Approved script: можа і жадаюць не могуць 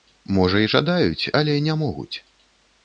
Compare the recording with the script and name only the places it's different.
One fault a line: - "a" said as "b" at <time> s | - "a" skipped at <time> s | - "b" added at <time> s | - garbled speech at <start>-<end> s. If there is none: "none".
- "але" added at 1.4 s